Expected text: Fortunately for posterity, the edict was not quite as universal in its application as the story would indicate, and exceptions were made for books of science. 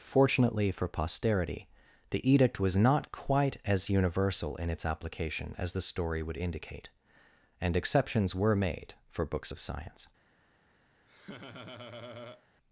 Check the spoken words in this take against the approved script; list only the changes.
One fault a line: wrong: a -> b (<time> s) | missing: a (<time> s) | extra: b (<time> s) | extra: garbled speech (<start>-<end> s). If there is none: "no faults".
no faults